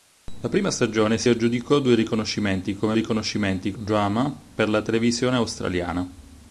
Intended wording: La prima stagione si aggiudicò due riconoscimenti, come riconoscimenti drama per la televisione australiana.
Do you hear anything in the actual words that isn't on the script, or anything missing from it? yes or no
no